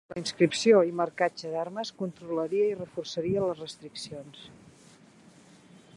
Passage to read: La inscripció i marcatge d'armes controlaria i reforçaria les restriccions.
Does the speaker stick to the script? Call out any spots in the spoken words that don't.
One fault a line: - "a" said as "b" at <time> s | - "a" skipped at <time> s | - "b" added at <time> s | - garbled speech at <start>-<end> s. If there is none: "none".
none